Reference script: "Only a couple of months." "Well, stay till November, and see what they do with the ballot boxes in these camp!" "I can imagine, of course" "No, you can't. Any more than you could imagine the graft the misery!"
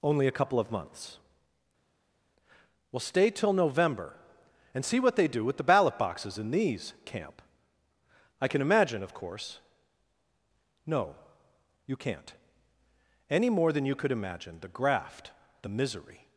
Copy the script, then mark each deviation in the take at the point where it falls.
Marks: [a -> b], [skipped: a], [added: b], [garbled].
"Only a couple of months." "Well, stay till November, and see what they do with the ballot boxes in these camp!" "I can imagine, of course" "No, you can't. Any more than you could imagine the graft the misery!"